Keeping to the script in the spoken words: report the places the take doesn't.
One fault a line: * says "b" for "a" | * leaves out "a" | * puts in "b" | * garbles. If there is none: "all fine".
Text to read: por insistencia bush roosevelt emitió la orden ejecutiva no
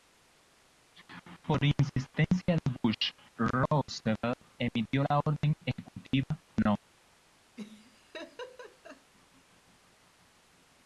* puts in "de"